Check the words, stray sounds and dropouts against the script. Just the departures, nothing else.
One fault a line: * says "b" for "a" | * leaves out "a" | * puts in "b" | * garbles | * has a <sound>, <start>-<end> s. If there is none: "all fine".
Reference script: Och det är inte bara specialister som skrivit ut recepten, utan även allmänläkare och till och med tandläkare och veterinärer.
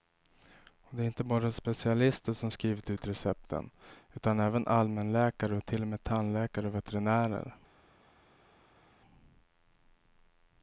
all fine